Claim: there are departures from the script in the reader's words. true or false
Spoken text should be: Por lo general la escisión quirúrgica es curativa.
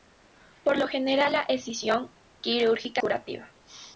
true